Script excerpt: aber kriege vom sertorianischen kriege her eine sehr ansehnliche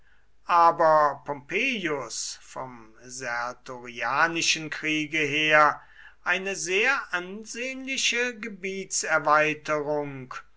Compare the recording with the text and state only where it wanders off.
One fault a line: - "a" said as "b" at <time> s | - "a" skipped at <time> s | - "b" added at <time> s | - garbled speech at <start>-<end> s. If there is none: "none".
- "kriege" said as "pompeius" at 1.2 s